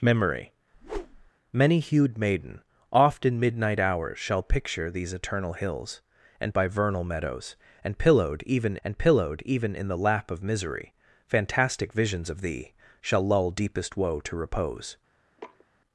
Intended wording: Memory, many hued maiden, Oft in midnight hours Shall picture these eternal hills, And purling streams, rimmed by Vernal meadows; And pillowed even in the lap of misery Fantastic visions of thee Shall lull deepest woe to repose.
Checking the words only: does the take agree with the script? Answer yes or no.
no